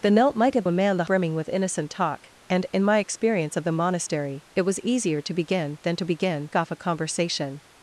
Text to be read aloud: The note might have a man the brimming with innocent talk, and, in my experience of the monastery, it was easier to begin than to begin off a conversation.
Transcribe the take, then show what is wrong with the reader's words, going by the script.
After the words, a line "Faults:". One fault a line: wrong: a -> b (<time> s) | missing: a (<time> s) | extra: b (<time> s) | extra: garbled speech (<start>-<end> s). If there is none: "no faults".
The note might have a man the brimming with innocent talk, and, in my experience of the monastery, it was easier to begin than to begin off a conversation.
Faults:
no faults